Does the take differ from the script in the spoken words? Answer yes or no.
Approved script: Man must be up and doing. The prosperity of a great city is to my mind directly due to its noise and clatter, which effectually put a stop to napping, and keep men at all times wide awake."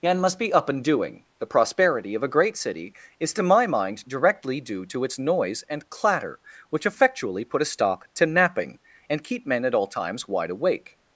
yes